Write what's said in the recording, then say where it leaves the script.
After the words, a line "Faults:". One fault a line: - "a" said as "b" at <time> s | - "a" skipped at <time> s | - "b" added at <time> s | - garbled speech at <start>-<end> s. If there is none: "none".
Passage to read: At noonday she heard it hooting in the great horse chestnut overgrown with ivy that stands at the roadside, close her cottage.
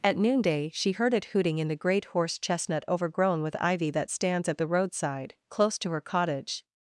At noonday she heard it hooting in the great horse chestnut overgrown with ivy that stands at the roadside, close to her cottage.
Faults:
- "to" added at 5.8 s